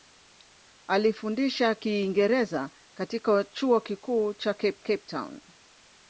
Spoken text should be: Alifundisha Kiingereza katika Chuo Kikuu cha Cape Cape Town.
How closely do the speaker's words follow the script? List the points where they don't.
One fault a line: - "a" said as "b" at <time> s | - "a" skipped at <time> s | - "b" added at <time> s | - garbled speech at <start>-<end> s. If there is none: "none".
none